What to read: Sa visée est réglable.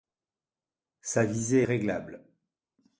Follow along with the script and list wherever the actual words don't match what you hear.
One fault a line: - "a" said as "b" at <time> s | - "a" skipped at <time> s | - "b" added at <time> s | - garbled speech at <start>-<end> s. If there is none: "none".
none